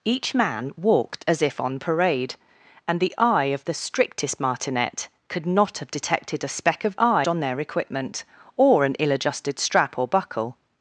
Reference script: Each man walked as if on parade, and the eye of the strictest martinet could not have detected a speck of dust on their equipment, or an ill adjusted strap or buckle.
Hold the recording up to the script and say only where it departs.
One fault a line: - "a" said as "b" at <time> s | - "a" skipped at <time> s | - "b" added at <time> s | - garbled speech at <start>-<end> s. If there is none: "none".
- "dust" said as "eye" at 7.0 s